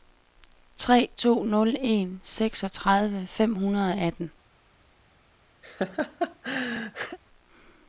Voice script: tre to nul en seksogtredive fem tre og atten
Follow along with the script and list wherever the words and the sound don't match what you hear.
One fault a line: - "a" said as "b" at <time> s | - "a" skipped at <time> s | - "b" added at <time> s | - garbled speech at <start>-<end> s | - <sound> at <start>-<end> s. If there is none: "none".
- "tre" said as "hundrede" at 3.5 s
- laugh at 5.6-7.2 s